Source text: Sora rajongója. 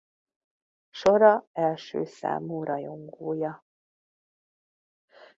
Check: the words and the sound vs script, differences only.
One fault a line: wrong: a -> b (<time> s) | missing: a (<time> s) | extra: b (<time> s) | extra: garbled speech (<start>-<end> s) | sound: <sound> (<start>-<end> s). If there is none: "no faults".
extra: első számú (1.5 s)